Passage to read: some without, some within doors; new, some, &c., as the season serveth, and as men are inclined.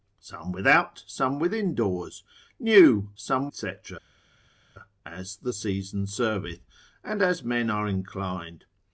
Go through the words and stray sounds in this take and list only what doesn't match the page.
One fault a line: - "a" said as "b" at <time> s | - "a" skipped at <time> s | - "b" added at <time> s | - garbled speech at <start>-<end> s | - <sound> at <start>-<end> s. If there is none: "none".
none